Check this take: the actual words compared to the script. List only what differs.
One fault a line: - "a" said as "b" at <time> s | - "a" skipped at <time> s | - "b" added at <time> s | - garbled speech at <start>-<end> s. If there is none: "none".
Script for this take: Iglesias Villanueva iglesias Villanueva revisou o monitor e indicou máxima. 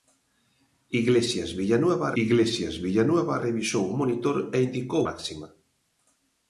none